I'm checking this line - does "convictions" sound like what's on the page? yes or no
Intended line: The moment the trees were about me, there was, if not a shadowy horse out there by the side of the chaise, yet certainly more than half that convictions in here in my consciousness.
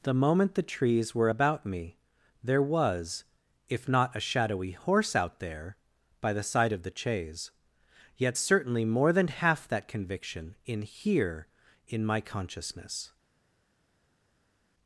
no